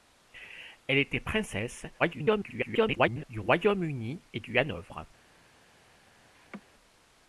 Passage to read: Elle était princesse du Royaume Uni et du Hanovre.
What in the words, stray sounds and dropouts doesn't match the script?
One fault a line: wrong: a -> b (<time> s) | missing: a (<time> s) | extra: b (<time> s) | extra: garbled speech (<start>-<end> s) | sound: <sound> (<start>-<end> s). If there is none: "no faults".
extra: garbled speech (2.0-3.2 s)
sound: laugh (6.3-6.6 s)